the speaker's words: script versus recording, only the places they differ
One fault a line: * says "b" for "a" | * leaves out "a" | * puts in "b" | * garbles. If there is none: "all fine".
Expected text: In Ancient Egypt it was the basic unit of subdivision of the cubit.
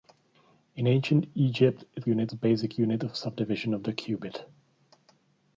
* says "unit" for "was"